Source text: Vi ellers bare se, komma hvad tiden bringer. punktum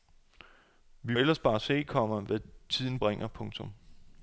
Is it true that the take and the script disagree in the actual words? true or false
false